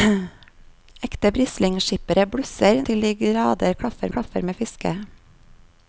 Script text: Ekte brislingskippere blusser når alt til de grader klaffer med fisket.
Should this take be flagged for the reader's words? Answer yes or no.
yes